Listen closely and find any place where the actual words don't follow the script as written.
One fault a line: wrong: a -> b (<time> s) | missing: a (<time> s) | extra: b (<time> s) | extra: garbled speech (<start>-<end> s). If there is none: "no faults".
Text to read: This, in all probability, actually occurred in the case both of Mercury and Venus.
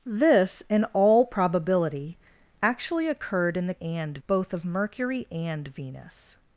wrong: case -> and (3.8 s)